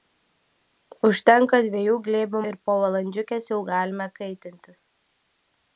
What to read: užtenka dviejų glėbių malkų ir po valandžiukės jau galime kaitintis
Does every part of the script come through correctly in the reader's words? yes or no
no